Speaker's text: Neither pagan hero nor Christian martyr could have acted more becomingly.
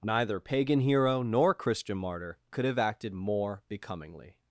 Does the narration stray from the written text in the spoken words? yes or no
no